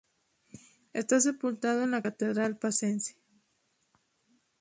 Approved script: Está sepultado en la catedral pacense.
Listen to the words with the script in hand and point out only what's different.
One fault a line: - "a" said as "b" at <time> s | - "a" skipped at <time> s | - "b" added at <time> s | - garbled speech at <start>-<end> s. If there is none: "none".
none